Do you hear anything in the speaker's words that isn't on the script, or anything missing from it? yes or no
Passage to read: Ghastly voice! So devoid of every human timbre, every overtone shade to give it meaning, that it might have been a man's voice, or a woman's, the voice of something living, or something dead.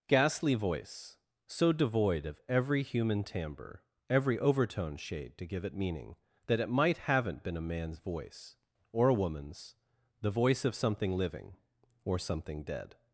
yes